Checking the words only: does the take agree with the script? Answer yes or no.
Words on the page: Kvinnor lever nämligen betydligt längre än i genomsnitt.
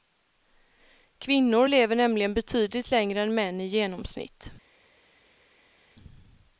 no